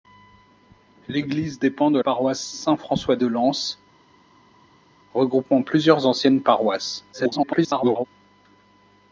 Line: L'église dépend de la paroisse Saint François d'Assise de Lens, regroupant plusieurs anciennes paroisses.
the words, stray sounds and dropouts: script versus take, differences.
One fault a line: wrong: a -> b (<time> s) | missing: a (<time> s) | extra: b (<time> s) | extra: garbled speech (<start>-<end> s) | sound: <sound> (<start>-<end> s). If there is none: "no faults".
missing: la (2.0 s)
missing: d'Assise (3.2 s)
extra: garbled speech (7.1-8.1 s)